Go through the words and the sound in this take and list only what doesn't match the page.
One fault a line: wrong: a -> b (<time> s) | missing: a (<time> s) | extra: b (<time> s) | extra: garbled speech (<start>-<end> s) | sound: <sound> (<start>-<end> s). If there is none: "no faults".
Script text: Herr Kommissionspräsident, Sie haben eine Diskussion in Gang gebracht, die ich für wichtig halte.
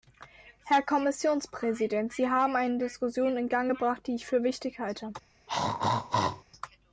sound: throat clearing (5.5-6.4 s)